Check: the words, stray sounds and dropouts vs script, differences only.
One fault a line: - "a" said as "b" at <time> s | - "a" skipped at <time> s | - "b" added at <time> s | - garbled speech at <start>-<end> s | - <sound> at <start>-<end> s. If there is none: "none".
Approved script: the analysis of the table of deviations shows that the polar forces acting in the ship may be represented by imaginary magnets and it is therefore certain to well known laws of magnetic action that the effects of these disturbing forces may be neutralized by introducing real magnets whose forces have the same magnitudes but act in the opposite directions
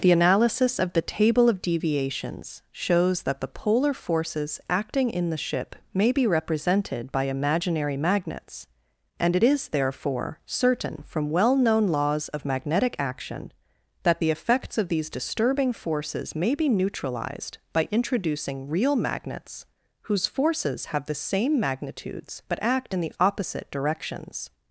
- "to" said as "from" at 11.1 s